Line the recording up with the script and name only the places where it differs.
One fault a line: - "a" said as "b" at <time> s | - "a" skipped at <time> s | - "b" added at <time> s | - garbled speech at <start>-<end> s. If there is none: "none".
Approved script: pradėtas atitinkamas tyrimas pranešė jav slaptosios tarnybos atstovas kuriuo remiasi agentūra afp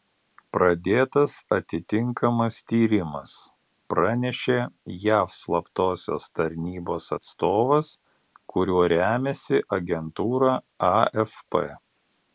none